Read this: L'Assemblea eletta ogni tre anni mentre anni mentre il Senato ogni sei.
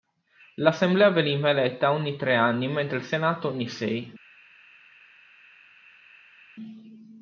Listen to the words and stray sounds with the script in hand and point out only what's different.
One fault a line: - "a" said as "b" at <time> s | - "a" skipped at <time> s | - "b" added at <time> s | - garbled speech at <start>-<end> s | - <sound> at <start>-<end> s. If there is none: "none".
- "veniva" added at 1.1 s
- "anni mentre" skipped at 3.0 s